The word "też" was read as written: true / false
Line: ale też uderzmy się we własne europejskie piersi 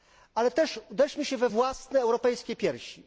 true